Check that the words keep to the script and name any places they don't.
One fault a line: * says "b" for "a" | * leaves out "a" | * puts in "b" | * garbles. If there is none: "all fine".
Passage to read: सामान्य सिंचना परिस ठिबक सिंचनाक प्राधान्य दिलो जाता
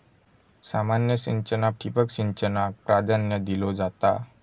* leaves out "परिस"